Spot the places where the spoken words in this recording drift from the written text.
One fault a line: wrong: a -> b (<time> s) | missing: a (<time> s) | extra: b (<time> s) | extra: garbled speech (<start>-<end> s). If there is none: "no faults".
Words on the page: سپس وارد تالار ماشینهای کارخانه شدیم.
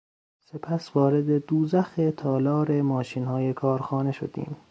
extra: دوزخ (1.4 s)